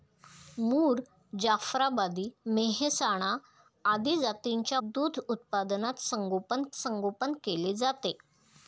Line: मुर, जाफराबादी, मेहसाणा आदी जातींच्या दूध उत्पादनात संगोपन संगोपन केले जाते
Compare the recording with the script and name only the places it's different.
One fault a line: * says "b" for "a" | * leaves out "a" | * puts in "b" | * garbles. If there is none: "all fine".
all fine